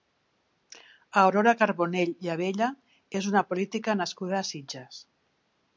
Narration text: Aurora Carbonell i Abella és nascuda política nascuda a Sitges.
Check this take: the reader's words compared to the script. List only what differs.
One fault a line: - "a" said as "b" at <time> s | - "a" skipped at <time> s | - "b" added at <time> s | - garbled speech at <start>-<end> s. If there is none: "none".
- "nascuda" said as "una" at 3.3 s